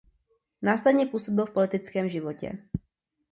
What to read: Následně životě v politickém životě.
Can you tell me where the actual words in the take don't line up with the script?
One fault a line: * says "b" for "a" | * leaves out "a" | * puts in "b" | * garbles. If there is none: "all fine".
* says "působil" for "životě"